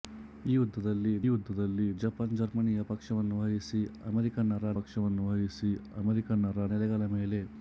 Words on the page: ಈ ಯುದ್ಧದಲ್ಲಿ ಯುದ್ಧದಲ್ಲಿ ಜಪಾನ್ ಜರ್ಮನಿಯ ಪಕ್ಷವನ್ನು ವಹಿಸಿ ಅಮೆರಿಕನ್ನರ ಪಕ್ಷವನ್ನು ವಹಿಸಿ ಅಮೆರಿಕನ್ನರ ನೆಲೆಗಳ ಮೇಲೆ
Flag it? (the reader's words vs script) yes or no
no